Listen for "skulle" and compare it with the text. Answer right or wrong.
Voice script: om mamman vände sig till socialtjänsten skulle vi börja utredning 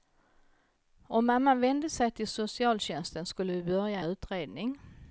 right